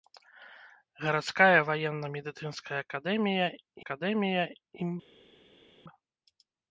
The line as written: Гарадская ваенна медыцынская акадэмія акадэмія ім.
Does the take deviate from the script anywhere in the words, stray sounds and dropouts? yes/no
no